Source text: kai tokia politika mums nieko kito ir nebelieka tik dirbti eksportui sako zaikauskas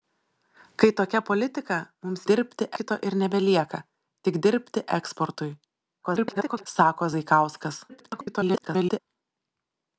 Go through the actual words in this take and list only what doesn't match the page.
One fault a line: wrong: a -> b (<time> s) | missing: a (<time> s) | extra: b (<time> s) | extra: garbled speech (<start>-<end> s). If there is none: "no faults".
wrong: nieko -> dirbti (2.3 s)
extra: garbled speech (6.0-6.7 s)
extra: garbled speech (7.9-9.0 s)